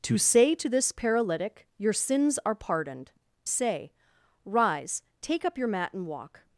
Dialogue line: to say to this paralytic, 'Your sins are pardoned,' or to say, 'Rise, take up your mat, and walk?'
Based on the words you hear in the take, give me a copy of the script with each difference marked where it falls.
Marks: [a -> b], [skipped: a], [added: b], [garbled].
to say to this paralytic, 'Your sins are pardoned,' [skipped: or to] say, 'Rise, take up your mat, and walk?'